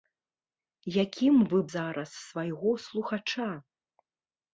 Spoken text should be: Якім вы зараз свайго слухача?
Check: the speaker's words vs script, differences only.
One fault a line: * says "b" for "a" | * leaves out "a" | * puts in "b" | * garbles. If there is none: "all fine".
all fine